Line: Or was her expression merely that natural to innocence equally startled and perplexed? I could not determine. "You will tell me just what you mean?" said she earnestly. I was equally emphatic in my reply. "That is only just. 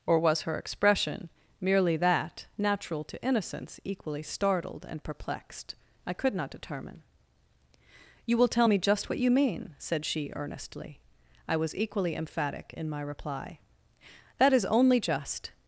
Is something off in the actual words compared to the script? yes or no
no